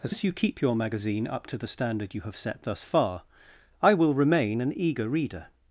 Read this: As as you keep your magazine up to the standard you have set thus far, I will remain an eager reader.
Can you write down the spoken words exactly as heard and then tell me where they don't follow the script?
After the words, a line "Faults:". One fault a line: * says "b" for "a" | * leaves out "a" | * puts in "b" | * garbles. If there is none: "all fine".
As as you keep your magazine up to the standard you have set thus far, I will remain an eager reader.
Faults:
all fine